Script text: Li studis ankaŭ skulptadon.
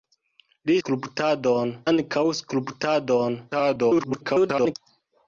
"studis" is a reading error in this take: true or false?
true